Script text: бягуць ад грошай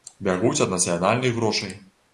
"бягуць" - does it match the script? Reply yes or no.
yes